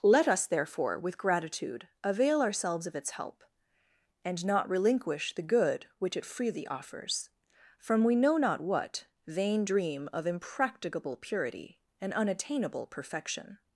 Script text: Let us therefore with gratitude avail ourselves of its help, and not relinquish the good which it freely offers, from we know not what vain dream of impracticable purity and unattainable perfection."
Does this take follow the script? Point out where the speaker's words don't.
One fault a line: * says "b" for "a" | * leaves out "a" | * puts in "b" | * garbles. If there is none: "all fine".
all fine